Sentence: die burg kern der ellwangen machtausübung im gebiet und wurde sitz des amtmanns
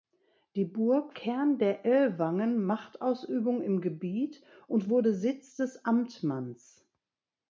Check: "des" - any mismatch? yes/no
no